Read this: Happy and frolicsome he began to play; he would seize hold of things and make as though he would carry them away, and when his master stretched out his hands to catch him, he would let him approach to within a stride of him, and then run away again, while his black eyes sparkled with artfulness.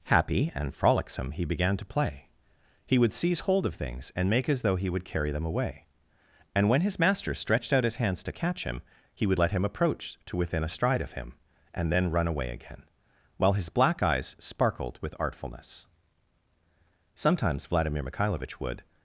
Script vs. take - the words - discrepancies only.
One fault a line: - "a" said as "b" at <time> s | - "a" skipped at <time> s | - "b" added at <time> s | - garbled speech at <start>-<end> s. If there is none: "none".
- "Sometimes Vladimir Mikhailovich would" added at 17.1 s